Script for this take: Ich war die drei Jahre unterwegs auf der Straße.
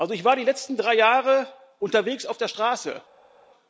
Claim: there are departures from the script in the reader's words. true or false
true